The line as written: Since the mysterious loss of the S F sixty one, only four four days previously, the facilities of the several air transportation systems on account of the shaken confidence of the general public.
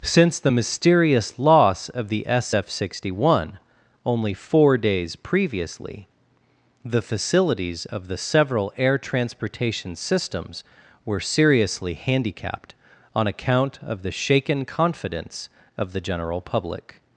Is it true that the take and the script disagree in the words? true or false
true